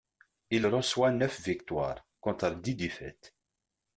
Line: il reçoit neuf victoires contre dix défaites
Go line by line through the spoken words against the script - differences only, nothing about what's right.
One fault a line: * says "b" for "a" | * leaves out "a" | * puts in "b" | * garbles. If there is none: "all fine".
all fine